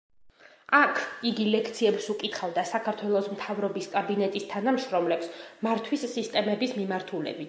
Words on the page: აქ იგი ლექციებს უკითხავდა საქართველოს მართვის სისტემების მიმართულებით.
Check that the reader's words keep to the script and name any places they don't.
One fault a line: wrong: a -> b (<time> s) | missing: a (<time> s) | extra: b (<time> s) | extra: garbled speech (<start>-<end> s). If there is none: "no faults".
extra: მთავრობის კაბინეტის თანამშრომლებს (3.4 s)